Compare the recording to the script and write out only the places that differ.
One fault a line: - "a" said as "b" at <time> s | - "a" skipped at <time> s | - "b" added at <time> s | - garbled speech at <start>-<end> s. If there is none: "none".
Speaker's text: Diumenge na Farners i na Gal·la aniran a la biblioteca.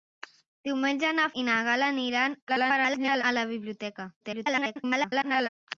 - "Farners" skipped at 1.3 s
- garbled speech at 2.5-3.2 s
- garbled speech at 4.2-5.5 s